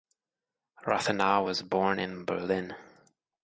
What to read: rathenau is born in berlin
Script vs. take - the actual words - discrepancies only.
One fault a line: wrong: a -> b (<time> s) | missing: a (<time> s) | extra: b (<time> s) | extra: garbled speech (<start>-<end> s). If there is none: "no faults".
wrong: is -> was (1.4 s)